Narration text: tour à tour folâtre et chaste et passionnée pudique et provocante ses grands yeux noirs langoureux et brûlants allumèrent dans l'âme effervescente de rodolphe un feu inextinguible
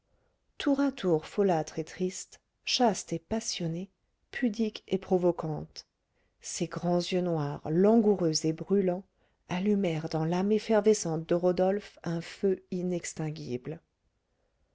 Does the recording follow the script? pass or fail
fail